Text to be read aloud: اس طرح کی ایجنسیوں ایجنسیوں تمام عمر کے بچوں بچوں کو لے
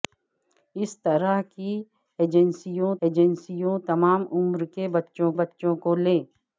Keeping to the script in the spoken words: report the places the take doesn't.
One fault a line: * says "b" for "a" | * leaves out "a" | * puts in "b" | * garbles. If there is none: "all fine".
all fine